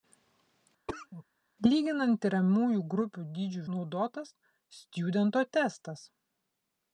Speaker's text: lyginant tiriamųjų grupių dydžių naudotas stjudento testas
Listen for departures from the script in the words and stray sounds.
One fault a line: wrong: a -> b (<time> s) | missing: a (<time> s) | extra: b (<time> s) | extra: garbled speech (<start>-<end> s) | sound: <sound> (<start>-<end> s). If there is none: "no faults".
sound: cough (0.9-1.2 s)